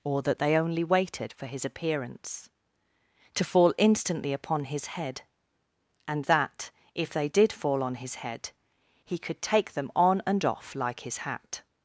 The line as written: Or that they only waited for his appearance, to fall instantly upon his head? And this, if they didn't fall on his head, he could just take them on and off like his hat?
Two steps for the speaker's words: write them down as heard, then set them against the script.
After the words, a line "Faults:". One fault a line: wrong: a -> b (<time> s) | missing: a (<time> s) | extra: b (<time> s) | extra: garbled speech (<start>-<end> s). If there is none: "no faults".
Or that they only waited for his appearance, to fall instantly upon his head? And that, if they did fall on his head, he could take them on and off like his hat?
Faults:
wrong: this -> that (6.2 s)
wrong: didn't -> did (7.3 s)
missing: just (9.4 s)